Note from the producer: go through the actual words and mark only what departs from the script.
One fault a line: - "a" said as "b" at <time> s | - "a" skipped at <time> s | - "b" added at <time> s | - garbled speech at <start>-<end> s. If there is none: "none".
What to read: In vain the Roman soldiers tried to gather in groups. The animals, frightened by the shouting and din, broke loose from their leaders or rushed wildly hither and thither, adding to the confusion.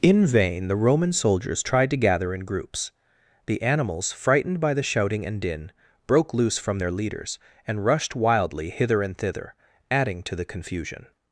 - "or" said as "and" at 7.7 s